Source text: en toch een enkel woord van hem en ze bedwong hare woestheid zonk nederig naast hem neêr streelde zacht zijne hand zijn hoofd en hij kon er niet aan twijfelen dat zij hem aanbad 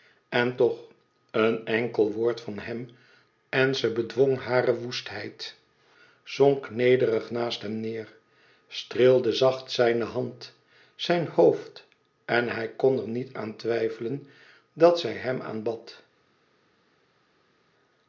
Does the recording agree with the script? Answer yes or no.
yes